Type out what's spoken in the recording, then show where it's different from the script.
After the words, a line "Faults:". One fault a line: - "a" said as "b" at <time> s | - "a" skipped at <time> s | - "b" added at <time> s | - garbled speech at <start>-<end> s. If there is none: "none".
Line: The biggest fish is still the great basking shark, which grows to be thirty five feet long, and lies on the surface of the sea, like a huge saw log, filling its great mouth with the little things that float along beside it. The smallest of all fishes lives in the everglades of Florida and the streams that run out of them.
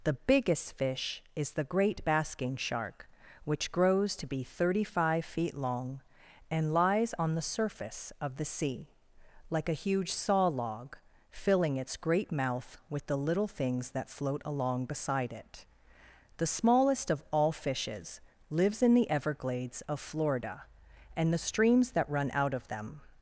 The biggest fish is the great basking shark, which grows to be thirty five feet long, and lies on the surface of the sea, like a huge saw log, filling its great mouth with the little things that float along beside it. The smallest of all fishes lives in the everglades of Florida and the streams that run out of them.
Faults:
- "still" skipped at 1.5 s